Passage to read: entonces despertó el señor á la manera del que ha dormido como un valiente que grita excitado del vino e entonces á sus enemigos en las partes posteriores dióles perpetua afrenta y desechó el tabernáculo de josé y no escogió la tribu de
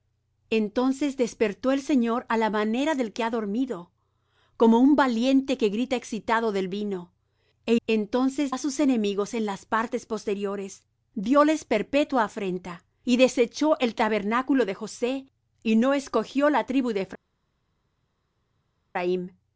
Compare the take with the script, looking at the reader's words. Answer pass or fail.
pass